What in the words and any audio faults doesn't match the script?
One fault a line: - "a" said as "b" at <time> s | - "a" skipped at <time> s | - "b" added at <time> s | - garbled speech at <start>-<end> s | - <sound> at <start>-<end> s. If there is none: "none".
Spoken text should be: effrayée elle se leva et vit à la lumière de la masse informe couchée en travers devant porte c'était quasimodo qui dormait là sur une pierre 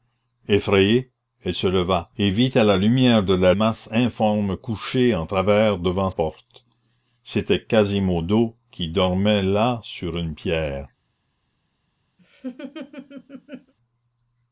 - laugh at 12.2-13.7 s